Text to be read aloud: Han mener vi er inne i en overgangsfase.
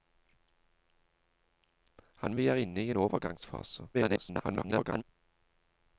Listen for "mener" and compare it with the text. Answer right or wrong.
wrong